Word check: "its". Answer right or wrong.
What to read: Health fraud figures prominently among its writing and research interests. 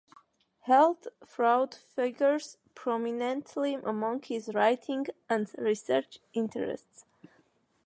wrong